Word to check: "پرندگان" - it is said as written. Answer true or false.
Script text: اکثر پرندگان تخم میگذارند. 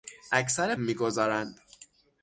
false